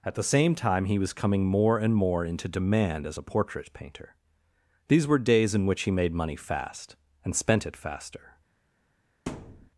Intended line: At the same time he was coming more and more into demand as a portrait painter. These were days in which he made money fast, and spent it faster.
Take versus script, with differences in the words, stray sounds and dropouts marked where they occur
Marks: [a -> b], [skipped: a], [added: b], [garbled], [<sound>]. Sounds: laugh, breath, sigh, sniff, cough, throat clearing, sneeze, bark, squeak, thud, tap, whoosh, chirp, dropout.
At the same time he was coming more and more into demand as a portrait painter. These were days in which he made money fast, and spent it faster. [thud]